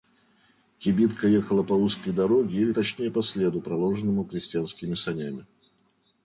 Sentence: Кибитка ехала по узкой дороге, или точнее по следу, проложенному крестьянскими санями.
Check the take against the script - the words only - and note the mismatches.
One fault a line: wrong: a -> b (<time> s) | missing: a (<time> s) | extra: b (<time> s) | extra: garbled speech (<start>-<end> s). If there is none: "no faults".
no faults